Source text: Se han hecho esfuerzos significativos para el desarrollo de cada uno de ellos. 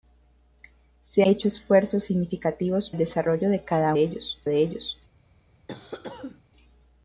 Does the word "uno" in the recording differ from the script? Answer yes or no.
yes